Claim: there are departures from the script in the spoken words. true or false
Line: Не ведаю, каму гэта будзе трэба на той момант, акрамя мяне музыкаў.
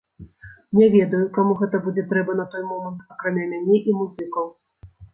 true